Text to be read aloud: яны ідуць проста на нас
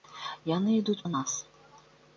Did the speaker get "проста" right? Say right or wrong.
wrong